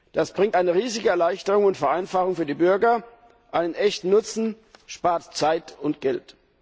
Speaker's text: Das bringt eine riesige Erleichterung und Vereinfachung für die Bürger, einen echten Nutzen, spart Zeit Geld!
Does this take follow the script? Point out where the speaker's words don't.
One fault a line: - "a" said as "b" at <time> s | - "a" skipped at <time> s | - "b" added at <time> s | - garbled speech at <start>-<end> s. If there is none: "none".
- "und" added at 5.8 s